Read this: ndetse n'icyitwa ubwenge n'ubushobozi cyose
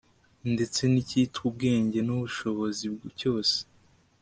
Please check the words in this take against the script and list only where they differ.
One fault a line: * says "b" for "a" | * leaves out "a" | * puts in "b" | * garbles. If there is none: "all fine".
all fine